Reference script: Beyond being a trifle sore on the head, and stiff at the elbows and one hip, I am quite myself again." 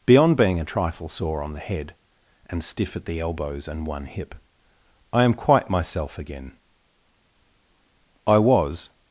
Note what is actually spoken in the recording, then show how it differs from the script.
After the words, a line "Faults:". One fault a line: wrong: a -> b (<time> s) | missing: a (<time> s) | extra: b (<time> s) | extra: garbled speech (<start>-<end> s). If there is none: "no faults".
Beyond being a trifle sore on the head, and stiff at the elbows and one hip, I am quite myself again." "I was
Faults:
extra: I was (8.2 s)